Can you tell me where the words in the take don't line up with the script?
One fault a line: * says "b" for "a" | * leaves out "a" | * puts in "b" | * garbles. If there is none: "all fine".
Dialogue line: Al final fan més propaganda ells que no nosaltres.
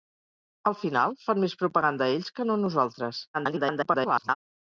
* garbles